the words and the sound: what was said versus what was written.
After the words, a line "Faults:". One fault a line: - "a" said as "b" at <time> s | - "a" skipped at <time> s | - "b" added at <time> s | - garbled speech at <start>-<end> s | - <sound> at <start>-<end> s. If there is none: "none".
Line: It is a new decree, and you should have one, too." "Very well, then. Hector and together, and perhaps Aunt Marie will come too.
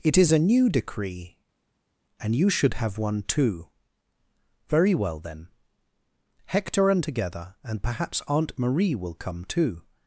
It is a new decree, and you should have one, too." "Very well, then. Hector and together, and perhaps Aunt Marie will come too.
Faults:
none